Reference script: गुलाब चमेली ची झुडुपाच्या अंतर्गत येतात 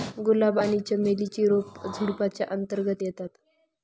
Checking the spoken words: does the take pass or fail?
fail